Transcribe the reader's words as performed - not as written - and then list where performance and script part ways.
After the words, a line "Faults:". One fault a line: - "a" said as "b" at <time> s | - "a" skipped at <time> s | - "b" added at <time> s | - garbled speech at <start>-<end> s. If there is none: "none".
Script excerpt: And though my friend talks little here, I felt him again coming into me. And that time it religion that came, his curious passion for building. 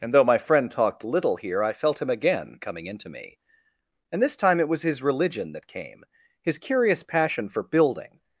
And though my friend talked little here, I felt him again coming into me. And this time it was his religion that came, his curious passion for building.
Faults:
- "talks" said as "talked" at 0.7 s
- "that" said as "this" at 4.2 s
- "was his" added at 4.7 s